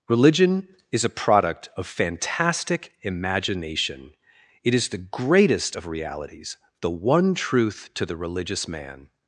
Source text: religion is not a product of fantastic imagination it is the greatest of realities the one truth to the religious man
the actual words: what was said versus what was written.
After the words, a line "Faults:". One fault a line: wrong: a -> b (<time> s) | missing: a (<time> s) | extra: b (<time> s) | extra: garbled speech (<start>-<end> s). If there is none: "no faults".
religion is a product of fantastic imagination it is the greatest of realities the one truth to the religious man
Faults:
missing: not (1.1 s)